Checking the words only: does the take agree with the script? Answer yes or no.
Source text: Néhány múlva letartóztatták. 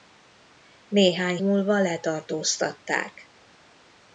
yes